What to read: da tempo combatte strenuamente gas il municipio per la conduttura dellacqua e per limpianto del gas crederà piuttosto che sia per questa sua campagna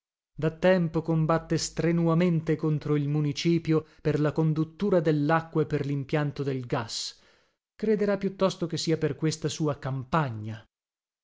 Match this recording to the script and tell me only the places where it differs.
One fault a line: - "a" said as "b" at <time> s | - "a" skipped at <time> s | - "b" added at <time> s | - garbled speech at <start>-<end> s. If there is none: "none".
- "gas" said as "contro" at 2.5 s